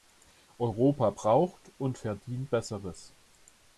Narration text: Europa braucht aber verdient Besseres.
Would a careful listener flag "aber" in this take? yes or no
yes